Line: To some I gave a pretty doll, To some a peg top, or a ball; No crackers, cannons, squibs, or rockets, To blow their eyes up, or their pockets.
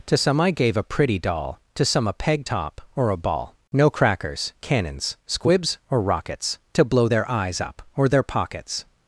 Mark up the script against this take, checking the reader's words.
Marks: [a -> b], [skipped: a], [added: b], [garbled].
To some I gave a pretty doll, To some a peg top, or a ball; No crackers, cannons, squibs, or rockets, To blow their eyes up, or their pockets.